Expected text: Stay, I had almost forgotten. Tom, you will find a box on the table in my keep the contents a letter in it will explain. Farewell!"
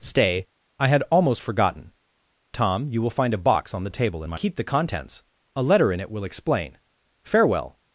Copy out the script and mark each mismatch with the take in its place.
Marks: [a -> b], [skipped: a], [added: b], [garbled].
Stay, I had almost forgotten. Tom, you will find a box on the table in my keep the contents a letter in it will explain. Farewell!"